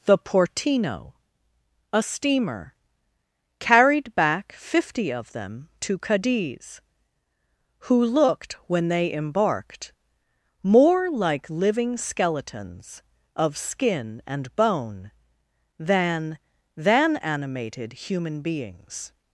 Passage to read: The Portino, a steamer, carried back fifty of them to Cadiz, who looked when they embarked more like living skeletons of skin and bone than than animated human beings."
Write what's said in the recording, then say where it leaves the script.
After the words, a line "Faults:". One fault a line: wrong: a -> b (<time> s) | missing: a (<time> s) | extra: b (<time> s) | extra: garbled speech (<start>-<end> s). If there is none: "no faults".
The Portino, a steamer, carried back fifty of them to Cadiz, who looked when they embarked more like living skeletons of skin and bone than than animated human beings."
Faults:
no faults